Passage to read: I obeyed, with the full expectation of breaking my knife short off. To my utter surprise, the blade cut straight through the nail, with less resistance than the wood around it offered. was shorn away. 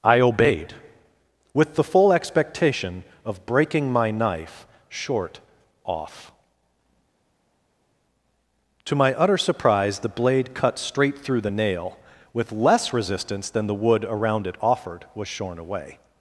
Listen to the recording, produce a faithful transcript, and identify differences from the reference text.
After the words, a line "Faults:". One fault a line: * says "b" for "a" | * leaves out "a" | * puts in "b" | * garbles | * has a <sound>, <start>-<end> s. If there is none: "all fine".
I obeyed, with the full expectation of breaking my knife short off. To my utter surprise, the blade cut straight through the nail, with less resistance than the wood around it offered. was shorn away.
Faults:
all fine